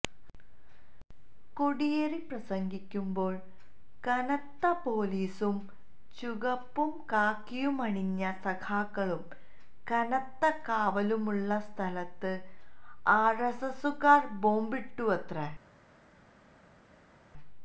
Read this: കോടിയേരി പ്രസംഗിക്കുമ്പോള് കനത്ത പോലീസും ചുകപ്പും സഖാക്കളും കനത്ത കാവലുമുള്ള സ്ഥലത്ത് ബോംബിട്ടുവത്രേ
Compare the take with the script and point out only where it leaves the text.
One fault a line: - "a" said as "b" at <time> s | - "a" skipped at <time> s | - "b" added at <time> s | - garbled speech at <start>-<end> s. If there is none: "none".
- "കാക്കിയുമണിഞ്ഞ" added at 7.1 s
- "ആര്എസ്എസുകാര്" added at 13.2 s